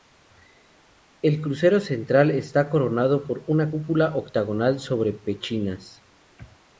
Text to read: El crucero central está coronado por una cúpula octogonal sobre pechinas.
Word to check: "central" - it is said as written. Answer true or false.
true